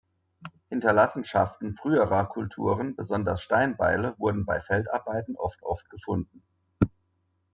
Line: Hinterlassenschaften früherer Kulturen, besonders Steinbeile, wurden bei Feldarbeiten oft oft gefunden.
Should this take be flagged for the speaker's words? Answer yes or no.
no